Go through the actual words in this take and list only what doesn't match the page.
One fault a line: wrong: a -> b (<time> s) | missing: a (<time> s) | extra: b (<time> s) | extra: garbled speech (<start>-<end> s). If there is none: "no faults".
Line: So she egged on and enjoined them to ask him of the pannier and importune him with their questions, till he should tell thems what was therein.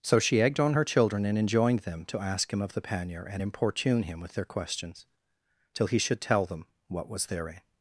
extra: her children (0.7 s)
wrong: thems -> them (6.4 s)